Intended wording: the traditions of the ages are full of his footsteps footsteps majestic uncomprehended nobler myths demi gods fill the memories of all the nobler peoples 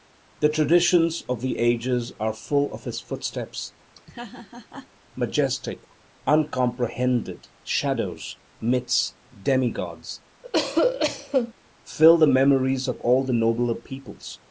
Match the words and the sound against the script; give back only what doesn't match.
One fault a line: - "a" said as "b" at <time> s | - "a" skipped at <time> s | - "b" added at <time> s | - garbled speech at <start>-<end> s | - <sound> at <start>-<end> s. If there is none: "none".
- "footsteps" skipped at 3.8 s
- laugh at 4.0-4.9 s
- "nobler" said as "shadows" at 7.6 s
- cough at 10.4-11.5 s